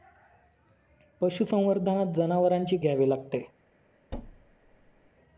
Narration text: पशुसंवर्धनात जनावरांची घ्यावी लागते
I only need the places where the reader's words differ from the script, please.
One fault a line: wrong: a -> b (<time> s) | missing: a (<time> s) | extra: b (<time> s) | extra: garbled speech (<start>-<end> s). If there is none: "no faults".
no faults